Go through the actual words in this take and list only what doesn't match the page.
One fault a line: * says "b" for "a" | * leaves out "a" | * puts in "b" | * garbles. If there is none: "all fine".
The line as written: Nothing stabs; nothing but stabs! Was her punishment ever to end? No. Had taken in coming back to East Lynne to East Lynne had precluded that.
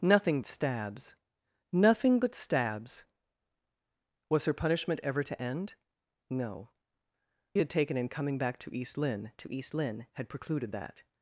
all fine